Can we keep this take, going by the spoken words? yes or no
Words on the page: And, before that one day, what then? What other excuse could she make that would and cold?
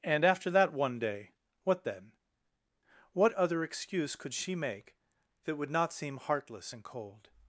no